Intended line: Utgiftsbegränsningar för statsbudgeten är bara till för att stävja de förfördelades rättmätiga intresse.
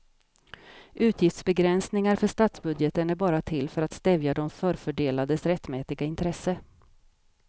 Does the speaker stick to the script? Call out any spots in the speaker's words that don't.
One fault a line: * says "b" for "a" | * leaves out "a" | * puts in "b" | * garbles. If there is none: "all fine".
all fine